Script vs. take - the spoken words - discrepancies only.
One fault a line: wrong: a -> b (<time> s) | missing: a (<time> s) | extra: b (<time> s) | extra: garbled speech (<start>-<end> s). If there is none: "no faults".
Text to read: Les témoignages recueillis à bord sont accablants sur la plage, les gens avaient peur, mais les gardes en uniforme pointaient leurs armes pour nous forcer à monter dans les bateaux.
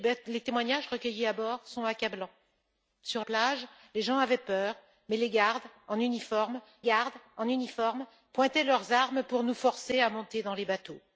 missing: la (3.2 s)
extra: gardes en uniforme (6.8 s)